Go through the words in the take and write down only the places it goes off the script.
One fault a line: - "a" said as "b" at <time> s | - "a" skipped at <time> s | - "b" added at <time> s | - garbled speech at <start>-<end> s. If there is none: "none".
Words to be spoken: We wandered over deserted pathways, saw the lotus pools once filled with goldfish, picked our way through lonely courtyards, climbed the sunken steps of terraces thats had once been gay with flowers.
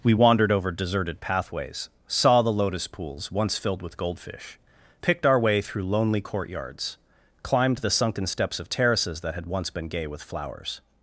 - "thats" said as "that" at 9.2 s